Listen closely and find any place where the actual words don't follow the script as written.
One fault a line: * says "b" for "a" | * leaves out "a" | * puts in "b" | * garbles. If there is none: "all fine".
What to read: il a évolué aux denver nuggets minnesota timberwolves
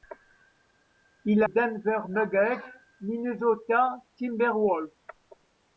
* leaves out "a évolué aux"